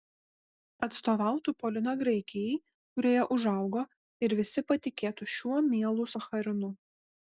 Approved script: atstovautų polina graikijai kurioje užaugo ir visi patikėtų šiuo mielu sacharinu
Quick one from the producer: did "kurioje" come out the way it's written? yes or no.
yes